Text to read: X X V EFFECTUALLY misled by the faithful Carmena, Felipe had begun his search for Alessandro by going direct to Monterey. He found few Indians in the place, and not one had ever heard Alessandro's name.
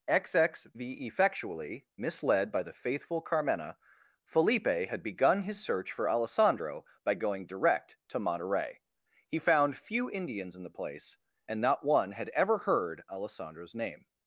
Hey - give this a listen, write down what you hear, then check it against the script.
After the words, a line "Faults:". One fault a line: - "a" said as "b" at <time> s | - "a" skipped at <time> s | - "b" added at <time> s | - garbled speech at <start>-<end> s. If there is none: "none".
X X V EFFECTUALLY misled by the faithful Carmena, Felipe had begun his search for Alessandro by going direct to Monterey. He found few Indians in the place, and not one had ever heard Alessandro's name.
Faults:
none